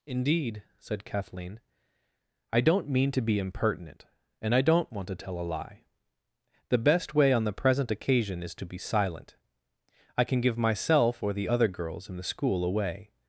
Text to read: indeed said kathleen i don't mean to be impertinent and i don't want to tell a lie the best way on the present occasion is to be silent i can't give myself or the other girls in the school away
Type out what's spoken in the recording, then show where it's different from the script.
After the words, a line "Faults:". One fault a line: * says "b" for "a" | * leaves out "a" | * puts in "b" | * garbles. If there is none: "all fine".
indeed said kathleen i don't mean to be impertinent and i don't want to tell a lie the best way on the present occasion is to be silent i can give myself or the other girls in the school away
Faults:
* says "can" for "can't"